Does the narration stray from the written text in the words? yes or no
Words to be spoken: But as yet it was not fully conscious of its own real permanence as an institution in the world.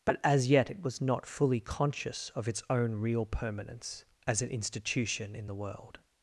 no